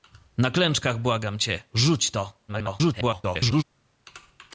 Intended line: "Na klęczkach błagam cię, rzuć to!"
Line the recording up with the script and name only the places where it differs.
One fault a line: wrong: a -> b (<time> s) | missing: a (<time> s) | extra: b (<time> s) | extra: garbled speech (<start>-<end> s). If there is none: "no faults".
extra: garbled speech (2.5-3.6 s)